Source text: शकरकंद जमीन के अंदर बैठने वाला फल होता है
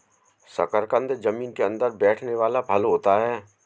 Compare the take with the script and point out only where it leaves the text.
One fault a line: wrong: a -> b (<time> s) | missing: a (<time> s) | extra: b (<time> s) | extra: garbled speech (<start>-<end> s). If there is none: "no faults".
no faults